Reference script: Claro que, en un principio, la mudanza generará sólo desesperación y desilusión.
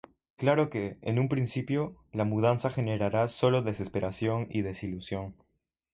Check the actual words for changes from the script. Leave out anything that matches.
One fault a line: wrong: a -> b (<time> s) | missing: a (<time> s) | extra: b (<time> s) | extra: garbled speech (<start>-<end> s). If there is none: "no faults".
no faults